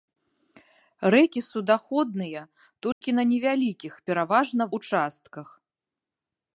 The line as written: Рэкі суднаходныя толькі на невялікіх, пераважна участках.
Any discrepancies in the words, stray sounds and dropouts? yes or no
yes